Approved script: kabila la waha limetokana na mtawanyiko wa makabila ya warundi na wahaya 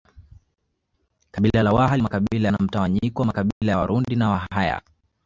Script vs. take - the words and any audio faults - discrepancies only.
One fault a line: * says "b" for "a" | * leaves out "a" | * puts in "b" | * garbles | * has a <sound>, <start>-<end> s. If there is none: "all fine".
* says "makabila" for "limetokana"
* has a dropout, 3.5-3.6 s